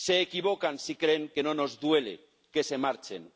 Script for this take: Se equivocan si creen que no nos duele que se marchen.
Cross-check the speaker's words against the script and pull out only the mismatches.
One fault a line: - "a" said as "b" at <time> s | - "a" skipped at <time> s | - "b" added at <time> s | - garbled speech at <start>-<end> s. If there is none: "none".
none